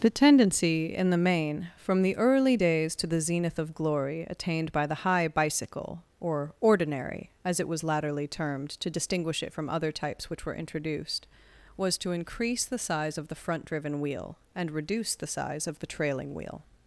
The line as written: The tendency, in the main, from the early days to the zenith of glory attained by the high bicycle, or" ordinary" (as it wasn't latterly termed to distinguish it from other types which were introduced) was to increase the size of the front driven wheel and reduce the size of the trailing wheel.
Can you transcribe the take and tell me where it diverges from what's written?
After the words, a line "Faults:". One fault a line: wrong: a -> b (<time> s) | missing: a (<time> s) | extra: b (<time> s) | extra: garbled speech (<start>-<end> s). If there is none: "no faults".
The tendency, in the main, from the early days to the zenith of glory attained by the high bicycle, or" ordinary" (as it was latterly termed to distinguish it from other types which were introduced) was to increase the size of the front driven wheel and reduce the size of the trailing wheel.
Faults:
wrong: wasn't -> was (7.7 s)